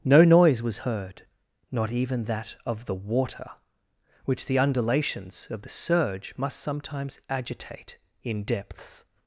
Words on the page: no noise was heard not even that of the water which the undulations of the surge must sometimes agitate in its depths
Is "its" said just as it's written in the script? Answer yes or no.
no